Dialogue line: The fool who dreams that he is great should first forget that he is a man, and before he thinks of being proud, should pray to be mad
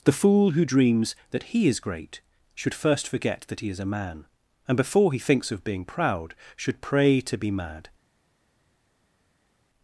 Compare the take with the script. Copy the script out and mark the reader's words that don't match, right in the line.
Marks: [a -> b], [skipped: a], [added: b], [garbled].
The fool who dreams that he is great should first forget that he is a man, and before he thinks of being proud, should pray to be mad